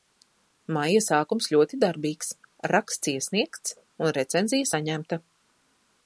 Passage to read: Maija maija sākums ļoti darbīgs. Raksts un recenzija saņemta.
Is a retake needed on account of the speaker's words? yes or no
yes